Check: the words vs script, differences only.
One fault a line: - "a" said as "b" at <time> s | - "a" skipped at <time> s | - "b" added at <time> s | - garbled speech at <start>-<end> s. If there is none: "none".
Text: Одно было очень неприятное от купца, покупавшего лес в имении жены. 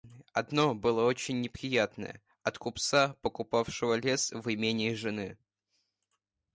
none